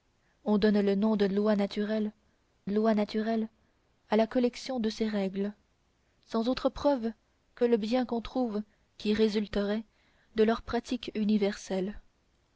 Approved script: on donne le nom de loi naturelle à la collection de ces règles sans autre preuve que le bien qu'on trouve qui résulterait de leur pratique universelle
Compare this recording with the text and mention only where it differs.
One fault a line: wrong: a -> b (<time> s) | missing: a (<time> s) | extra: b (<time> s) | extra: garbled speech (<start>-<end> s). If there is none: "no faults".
extra: loi naturelle (2.7 s)